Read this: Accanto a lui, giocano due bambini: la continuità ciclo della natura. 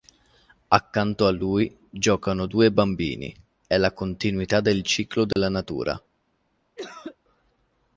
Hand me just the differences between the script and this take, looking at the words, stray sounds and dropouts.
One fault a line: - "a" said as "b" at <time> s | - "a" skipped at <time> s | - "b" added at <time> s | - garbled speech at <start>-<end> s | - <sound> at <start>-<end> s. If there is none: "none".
- "è" added at 3.6 s
- "del" added at 4.6 s
- dropout at 5.3-5.4 s
- cough at 6.8-7.2 s